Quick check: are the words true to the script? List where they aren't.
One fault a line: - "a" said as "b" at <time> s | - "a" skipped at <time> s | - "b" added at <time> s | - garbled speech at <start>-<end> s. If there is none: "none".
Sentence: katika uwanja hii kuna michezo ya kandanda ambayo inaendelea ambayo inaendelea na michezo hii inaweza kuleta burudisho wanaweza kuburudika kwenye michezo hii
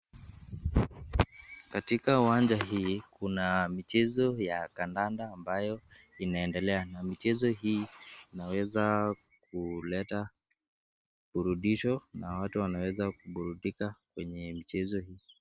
- "ambayo inaendelea" skipped at 6.9 s
- "na watu" added at 12.1 s